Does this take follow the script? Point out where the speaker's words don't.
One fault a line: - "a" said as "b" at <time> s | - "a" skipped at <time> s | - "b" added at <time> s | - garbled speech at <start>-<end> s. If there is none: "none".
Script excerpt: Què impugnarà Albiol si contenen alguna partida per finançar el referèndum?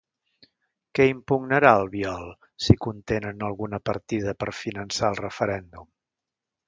none